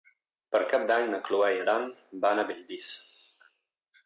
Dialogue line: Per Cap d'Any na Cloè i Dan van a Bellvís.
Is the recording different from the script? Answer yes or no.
no